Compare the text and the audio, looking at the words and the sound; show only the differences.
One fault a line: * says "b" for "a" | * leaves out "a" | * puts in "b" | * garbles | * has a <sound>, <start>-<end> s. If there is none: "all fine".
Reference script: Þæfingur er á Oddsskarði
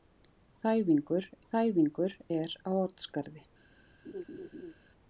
* puts in "þæfingur"
* has a laugh, 4.0-4.7 s